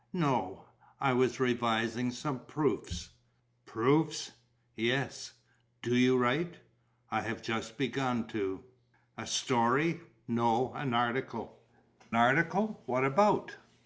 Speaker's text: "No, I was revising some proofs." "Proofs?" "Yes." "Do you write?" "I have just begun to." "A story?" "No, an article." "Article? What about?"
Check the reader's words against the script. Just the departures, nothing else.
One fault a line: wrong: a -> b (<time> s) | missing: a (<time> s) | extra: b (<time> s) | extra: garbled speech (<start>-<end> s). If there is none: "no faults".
no faults